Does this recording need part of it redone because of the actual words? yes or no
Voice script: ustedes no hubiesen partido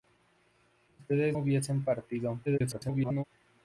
yes